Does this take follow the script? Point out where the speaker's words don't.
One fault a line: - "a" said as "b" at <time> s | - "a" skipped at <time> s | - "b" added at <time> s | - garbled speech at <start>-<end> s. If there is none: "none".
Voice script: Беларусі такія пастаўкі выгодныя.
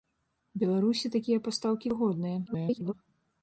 - garbled speech at 2.5-2.9 s